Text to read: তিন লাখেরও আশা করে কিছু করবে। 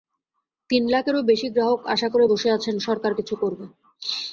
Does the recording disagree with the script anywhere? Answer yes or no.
yes